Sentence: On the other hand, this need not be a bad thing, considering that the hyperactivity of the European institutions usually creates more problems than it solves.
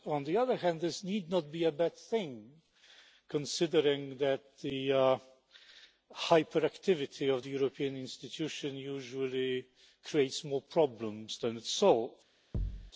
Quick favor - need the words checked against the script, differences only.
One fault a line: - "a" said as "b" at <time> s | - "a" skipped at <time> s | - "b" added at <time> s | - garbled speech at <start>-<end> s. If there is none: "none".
none